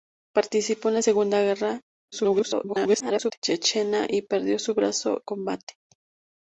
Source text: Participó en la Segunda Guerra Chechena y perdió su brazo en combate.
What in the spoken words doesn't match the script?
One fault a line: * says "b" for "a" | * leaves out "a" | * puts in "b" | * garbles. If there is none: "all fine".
* garbles
* leaves out "en"